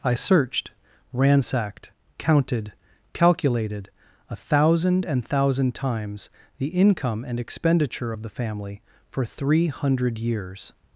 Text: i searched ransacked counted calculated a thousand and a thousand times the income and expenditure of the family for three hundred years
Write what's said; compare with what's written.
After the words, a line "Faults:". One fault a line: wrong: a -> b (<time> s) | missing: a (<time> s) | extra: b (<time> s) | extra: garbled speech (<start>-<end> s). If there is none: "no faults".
i searched ransacked counted calculated a thousand and thousand times the income and expenditure of the family for three hundred years
Faults:
missing: a (5.3 s)